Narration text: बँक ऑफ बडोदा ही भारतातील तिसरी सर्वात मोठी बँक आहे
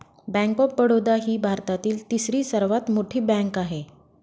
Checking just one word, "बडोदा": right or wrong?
right